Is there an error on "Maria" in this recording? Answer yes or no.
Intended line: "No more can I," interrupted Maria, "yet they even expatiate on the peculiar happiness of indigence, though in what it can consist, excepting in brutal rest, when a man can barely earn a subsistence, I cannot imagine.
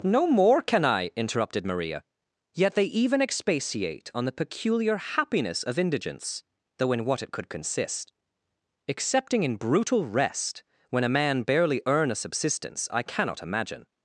no